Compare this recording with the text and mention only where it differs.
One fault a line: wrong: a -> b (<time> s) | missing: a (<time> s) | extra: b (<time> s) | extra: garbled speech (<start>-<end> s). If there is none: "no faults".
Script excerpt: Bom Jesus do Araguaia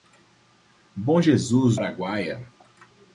missing: do (1.8 s)